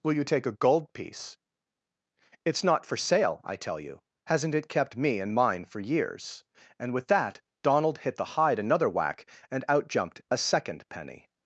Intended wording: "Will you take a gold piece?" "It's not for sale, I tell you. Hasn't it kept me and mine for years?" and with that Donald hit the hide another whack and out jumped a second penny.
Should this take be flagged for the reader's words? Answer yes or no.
no